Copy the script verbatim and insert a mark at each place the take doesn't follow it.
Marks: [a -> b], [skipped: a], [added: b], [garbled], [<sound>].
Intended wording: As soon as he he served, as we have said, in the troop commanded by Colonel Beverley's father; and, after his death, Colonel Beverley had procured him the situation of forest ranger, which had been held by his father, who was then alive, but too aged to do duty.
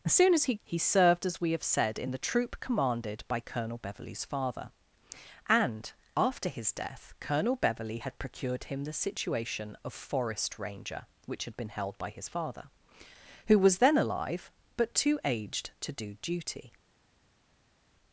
As soon as he he served, as we have said, in the troop commanded by Colonel Beverley's father; and, after his death, Colonel Beverley had procured him the situation of forest ranger, which had been held by his father, who was then alive, but too aged to do duty.